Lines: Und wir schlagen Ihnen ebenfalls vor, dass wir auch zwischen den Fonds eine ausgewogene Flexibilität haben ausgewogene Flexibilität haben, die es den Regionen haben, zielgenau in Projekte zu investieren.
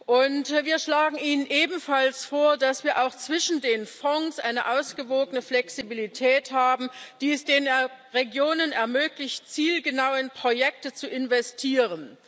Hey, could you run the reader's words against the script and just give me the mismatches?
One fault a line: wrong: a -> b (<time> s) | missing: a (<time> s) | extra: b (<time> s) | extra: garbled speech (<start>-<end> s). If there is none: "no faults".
missing: ausgewogene Flexibilität haben (6.9 s)
wrong: haben -> ermöglicht (8.7 s)